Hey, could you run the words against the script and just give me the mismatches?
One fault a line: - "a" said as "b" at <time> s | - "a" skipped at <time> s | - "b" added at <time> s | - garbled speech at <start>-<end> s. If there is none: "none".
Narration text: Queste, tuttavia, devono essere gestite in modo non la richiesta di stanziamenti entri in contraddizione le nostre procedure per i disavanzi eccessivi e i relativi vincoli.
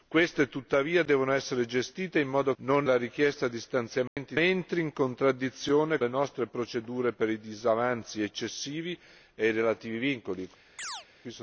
none